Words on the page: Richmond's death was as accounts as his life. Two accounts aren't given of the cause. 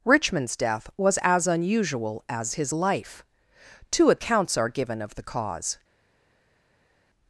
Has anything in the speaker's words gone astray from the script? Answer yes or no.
yes